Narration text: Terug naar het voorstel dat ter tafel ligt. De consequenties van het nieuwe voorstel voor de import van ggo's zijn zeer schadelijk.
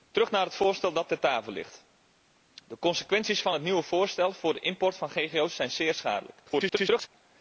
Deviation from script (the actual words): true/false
true